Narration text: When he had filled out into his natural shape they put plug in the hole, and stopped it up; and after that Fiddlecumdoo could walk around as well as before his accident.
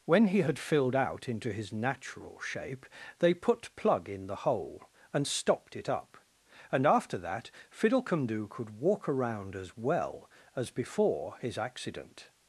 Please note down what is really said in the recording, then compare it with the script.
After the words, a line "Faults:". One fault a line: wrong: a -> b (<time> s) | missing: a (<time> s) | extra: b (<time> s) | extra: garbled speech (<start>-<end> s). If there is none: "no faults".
When he had filled out into his natural shape they put plug in the hole, and stopped it up; and after that Fiddlecumdoo could walk around as well as before his accident.
Faults:
no faults